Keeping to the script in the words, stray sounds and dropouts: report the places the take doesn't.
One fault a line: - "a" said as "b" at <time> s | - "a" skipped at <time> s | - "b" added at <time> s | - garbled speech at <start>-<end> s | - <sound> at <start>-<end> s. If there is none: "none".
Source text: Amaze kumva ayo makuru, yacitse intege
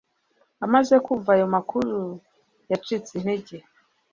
none